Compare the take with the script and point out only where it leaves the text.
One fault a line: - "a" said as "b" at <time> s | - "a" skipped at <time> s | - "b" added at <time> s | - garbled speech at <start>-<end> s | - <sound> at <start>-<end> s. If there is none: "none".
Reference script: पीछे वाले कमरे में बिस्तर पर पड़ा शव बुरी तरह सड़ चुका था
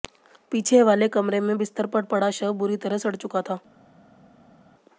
none